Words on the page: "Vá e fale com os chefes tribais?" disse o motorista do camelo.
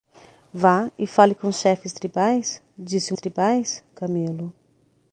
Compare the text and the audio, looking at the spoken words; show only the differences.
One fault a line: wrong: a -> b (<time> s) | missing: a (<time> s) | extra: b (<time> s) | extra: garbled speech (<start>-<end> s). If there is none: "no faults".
wrong: motorista -> tribais (3.1 s)